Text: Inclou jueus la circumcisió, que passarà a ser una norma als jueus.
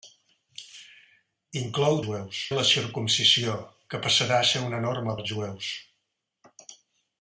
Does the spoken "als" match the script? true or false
true